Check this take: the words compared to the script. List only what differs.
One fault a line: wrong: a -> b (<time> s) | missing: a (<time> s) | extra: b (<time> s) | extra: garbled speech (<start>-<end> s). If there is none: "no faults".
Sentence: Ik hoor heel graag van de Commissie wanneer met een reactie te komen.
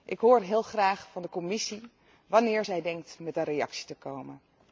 extra: zij denkt (2.6 s)